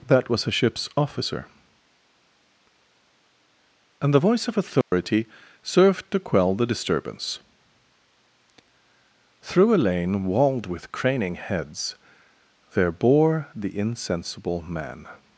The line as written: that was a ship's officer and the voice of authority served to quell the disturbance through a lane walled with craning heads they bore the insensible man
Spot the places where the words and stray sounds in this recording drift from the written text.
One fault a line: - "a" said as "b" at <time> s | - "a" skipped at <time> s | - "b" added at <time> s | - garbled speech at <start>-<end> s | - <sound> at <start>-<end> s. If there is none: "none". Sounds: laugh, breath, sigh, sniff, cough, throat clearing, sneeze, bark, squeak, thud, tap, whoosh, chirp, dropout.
- dropout at 4.8-4.9 s
- "they" said as "there" at 12.7 s